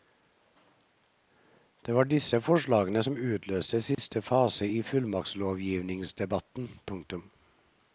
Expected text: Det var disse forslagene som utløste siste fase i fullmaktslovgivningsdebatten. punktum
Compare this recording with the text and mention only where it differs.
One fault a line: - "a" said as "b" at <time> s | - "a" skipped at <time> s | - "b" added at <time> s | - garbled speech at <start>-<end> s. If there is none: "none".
none